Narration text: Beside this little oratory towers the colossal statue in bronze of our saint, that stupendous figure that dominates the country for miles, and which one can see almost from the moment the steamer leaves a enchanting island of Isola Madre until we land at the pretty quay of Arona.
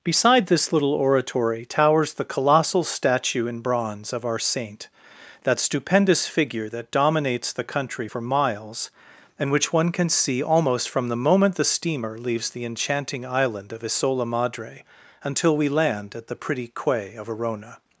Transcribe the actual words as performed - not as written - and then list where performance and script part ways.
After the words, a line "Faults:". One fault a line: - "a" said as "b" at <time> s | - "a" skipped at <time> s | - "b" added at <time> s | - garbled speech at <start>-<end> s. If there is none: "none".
Beside this little oratory towers the colossal statue in bronze of our saint, that stupendous figure that dominates the country for miles, and which one can see almost from the moment the steamer leaves the enchanting island of Isola Madre until we land at the pretty quay of Arona.
Faults:
- "a" said as "the" at 12.5 s